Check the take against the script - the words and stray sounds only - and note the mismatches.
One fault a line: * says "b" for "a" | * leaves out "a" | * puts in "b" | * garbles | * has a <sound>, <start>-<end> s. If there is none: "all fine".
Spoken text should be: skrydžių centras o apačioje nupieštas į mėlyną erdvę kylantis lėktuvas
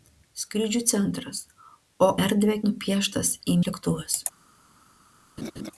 * says "erdvę" for "apačioje"
* leaves out "mėlyną erdvę kylantis"
* has a laugh, 5.4-5.7 s